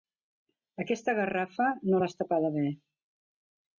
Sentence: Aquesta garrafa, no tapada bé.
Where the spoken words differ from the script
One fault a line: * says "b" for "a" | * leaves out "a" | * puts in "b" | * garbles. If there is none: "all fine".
* puts in "l'has"